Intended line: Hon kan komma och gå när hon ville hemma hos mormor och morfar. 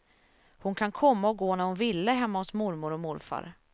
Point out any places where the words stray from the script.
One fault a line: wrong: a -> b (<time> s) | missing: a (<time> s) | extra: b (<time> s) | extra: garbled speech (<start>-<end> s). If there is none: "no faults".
no faults